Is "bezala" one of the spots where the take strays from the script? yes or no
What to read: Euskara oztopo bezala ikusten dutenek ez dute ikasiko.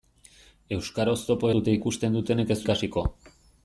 yes